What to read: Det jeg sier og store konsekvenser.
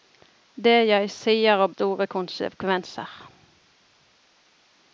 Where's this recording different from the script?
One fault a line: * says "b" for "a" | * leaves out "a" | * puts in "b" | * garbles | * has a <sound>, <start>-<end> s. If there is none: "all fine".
all fine